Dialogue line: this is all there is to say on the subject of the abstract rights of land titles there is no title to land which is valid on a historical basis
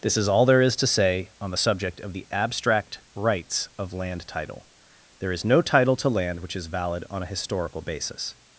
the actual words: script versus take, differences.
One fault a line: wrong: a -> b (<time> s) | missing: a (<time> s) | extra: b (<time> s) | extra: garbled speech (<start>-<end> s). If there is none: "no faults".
wrong: titles -> title (4.3 s)